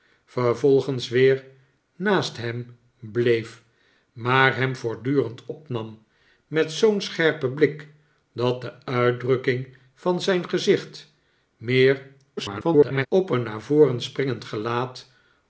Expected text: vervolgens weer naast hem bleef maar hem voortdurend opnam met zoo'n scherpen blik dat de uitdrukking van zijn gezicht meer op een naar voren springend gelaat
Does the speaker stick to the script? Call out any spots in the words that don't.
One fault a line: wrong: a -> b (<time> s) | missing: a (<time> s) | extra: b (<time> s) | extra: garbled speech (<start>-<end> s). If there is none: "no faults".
extra: garbled speech (12.4-13.1 s)